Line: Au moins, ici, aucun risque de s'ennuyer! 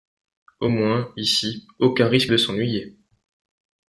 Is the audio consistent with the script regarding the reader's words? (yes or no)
yes